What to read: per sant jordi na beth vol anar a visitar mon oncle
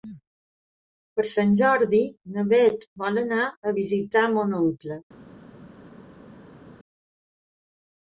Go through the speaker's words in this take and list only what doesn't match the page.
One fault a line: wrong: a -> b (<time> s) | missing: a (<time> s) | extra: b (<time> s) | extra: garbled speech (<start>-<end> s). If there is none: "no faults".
no faults